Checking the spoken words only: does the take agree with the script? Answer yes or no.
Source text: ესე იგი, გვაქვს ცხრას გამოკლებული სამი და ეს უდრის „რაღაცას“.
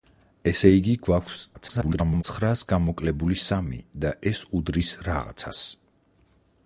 no